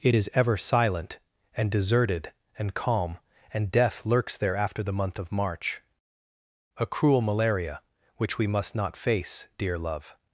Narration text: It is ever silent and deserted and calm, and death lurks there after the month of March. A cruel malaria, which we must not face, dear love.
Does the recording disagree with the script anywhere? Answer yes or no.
no